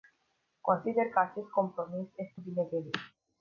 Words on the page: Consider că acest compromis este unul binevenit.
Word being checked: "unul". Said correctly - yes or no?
no